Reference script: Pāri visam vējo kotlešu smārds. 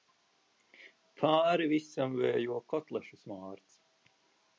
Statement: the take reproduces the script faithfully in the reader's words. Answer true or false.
true